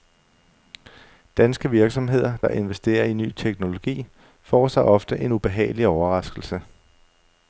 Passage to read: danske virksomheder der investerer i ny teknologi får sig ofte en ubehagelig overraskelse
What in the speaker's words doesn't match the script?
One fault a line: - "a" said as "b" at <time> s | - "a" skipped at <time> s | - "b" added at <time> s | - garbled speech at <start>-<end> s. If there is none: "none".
none